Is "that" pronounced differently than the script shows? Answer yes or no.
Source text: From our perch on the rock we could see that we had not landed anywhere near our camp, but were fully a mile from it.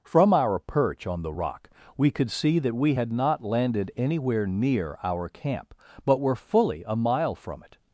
no